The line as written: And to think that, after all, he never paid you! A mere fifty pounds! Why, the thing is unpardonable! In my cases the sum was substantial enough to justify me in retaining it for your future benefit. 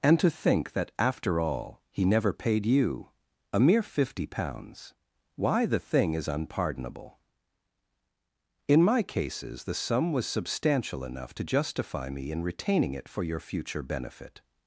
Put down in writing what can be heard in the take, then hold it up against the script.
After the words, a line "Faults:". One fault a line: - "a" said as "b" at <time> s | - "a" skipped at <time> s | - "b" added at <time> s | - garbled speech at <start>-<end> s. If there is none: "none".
And to think that, after all, he never paid you! A mere fifty pounds! Why, the thing is unpardonable! In my cases the sum was substantial enough to justify me in retaining it for your future benefit.
Faults:
none